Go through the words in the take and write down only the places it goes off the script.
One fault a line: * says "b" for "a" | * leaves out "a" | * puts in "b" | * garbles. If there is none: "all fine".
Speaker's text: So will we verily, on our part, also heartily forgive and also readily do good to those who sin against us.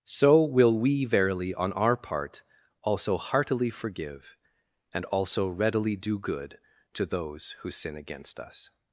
all fine